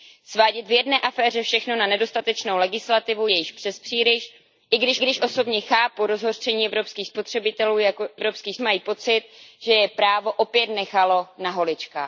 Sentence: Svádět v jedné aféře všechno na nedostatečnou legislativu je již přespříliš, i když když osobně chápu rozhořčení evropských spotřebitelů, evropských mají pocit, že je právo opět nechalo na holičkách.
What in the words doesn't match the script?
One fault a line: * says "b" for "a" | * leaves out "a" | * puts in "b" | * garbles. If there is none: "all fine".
all fine